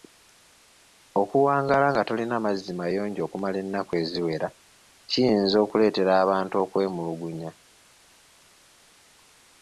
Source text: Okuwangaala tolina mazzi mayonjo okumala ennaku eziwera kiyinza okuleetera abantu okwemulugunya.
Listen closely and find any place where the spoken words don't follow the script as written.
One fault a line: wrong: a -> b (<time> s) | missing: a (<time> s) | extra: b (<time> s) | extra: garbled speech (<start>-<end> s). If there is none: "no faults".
extra: nga (1.9 s)